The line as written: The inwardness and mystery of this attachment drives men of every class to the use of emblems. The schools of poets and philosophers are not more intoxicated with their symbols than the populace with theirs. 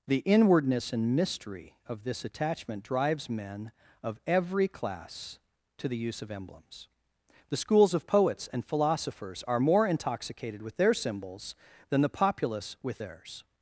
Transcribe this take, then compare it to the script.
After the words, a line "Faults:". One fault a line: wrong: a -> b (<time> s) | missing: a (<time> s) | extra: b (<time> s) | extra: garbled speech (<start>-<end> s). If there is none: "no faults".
The inwardness and mystery of this attachment drives men of every class to the use of emblems. The schools of poets and philosophers are more intoxicated with their symbols than the populace with theirs.
Faults:
missing: not (9.6 s)